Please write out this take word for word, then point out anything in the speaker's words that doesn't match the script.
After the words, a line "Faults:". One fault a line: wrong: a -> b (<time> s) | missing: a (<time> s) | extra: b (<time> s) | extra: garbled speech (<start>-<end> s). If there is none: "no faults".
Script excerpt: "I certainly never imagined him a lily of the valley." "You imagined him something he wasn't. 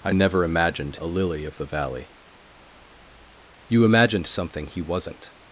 "I never imagined a lily of the valley." "You imagined something he wasn't.
Faults:
missing: certainly (0.1 s)
missing: him (1.0 s)
missing: him (4.3 s)